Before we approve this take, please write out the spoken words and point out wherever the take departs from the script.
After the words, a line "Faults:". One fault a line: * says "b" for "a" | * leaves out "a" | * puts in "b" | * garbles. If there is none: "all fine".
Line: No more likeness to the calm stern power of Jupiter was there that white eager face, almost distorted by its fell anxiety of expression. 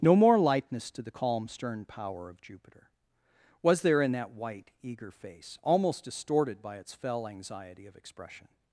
No more likeness to the calm stern power of Jupiter was there in that white eager face, almost distorted by its fell anxiety of expression.
Faults:
* puts in "in"